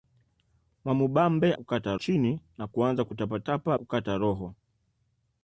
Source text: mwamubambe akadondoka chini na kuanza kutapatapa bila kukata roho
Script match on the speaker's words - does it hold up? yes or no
no